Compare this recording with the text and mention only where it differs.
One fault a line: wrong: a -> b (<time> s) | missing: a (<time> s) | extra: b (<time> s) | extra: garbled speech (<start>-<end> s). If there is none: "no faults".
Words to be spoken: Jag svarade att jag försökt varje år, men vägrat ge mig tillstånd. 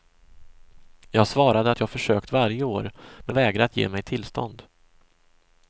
no faults